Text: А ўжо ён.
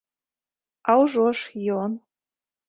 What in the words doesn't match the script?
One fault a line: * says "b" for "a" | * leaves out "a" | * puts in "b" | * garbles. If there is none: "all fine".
* puts in "ж"